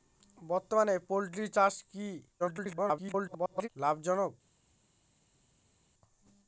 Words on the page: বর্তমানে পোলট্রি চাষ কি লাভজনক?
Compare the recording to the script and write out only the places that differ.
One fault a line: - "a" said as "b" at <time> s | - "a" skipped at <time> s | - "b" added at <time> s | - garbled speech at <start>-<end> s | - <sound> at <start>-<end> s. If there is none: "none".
- garbled speech at 2.4-3.7 s